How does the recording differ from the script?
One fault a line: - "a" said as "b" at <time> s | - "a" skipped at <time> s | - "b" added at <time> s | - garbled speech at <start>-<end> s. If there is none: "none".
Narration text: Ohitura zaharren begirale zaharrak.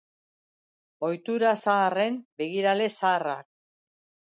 none